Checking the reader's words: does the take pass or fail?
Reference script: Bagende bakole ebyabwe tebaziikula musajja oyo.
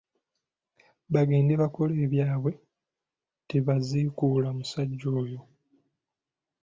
pass